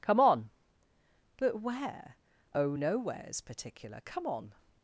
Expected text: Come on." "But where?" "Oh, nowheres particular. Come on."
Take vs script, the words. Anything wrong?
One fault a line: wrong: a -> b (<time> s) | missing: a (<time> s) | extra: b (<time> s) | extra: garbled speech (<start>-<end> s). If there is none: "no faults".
no faults